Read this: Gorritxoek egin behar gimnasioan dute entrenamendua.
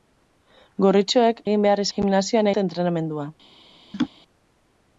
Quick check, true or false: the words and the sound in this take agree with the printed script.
false